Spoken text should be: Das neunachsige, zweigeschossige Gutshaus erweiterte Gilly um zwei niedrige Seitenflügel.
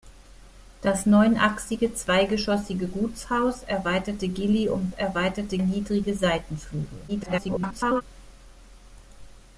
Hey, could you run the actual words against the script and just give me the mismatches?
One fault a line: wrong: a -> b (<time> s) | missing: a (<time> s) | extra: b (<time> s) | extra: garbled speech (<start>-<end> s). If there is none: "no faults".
wrong: zwei -> erweiterte (4.9 s)
extra: garbled speech (7.1-8.0 s)